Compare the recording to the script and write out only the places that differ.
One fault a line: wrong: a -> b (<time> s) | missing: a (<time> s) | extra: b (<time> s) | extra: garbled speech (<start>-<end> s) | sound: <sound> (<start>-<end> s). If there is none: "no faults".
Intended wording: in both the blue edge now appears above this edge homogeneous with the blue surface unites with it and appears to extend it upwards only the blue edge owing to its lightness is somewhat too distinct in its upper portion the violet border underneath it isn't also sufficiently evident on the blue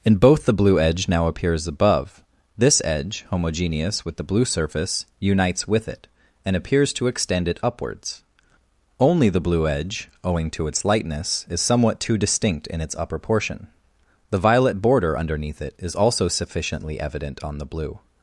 wrong: isn't -> is (15.8 s)